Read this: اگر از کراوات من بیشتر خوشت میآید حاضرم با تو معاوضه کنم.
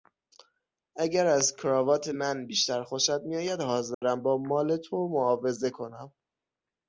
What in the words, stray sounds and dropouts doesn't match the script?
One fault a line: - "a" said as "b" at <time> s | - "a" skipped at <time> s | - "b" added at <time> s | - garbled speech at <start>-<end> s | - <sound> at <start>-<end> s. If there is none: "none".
- dropout at 3.9-4.0 s
- "مال" added at 4.4 s